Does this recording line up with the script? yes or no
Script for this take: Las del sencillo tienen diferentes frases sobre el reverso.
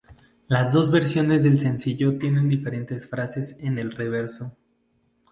no